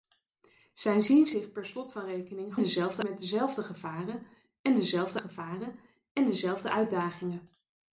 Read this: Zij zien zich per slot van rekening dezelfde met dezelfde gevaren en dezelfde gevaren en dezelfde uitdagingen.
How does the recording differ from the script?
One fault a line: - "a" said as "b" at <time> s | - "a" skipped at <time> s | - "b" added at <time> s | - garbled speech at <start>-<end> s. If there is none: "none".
none